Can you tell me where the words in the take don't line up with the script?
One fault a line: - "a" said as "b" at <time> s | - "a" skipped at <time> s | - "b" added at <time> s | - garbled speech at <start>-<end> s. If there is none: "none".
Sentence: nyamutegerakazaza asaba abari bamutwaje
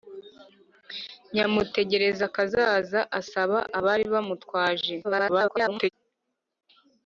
- garbled speech at 5.0-5.9 s